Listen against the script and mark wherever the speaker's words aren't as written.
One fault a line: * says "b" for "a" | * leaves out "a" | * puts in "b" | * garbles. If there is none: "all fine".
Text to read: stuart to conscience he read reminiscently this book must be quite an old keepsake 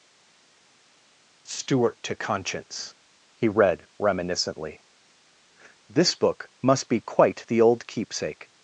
* says "the" for "an"